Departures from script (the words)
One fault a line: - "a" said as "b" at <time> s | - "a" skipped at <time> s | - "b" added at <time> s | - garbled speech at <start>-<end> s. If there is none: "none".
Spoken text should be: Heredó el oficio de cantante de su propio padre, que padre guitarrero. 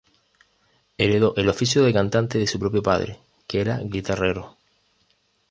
- "padre" said as "era" at 3.6 s